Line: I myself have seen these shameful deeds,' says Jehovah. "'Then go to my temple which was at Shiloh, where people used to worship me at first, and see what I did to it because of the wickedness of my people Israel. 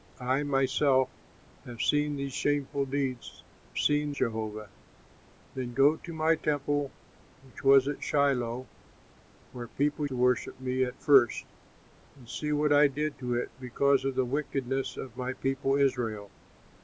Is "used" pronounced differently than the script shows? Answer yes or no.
yes